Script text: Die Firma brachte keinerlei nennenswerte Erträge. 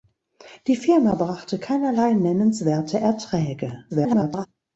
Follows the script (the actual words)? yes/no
no